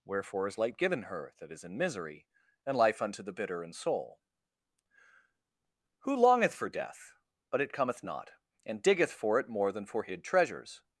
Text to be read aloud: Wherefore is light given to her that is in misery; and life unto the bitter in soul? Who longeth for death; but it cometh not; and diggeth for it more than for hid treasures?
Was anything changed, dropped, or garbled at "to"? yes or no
yes